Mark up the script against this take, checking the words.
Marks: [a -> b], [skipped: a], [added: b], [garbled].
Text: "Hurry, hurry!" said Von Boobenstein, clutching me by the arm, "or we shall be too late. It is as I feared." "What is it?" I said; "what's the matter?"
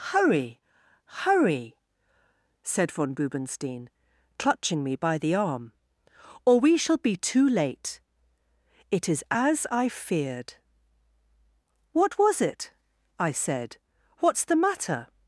"Hurry, hurry!" said Von Boobenstein, clutching me by the arm, "or we shall be too late. It is as I feared." "What [is -> was] it?" I said; "what's the matter?"